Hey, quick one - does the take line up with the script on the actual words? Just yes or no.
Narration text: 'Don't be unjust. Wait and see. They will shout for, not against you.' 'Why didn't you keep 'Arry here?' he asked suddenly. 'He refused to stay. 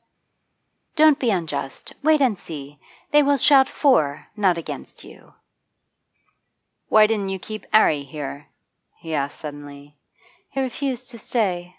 yes